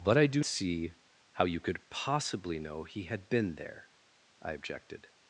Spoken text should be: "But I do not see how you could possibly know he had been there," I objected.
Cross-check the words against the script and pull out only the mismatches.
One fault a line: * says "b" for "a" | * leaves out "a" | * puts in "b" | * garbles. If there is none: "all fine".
* leaves out "not"